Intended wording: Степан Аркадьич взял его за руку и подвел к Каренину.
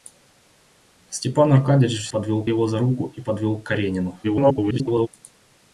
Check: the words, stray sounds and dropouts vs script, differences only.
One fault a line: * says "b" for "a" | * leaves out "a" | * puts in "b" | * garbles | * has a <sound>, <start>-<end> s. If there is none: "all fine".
* says "подвел" for "взял"
* garbles